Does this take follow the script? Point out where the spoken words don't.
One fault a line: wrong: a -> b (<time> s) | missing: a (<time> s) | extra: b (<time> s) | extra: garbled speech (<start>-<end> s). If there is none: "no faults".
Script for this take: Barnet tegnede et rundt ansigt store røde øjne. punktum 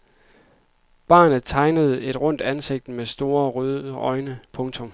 extra: med (2.9 s)